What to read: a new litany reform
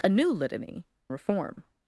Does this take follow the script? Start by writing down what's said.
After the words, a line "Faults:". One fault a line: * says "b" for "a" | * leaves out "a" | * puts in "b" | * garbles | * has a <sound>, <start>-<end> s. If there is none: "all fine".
a new litany reform
Faults:
all fine